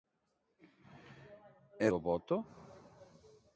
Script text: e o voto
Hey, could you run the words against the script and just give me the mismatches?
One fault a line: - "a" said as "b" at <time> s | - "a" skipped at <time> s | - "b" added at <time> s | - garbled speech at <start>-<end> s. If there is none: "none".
none